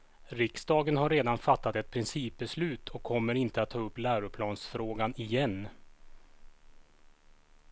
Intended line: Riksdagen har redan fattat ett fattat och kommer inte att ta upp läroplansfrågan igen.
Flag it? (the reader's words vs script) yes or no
yes